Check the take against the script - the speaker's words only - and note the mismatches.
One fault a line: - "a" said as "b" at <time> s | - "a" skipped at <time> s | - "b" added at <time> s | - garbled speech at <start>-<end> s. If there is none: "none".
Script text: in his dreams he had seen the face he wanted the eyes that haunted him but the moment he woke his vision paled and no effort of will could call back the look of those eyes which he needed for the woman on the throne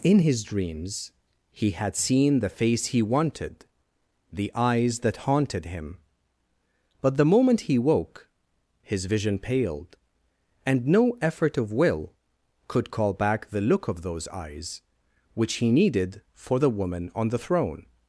none